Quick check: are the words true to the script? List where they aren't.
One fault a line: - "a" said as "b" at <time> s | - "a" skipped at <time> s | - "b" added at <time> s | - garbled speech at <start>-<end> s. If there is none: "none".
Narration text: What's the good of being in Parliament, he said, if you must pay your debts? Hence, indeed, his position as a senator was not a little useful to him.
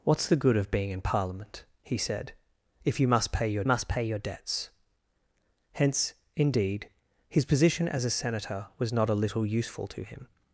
- "must pay your" added at 3.6 s